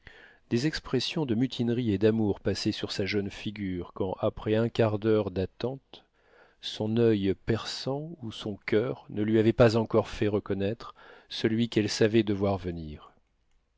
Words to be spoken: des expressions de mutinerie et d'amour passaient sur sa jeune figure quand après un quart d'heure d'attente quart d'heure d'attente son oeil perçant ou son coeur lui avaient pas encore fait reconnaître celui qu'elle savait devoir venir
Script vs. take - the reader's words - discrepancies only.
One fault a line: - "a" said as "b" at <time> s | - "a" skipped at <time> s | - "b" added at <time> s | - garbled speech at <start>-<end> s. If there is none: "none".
- "quart d'heure d'attente" skipped at 6.0 s
- "ne" added at 9.1 s